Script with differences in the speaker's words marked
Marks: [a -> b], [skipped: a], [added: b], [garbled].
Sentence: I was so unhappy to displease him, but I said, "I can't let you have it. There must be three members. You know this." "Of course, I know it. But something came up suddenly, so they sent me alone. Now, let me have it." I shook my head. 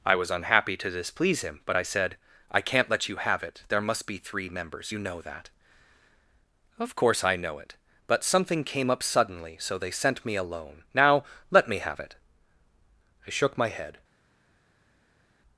I was [skipped: so] unhappy to displease him, but I said, "I can't let you have it. There must be three members. You know [this." -> that] "Of course, I know it. But something came up suddenly, so they sent me alone. Now, let me have it." I shook my head.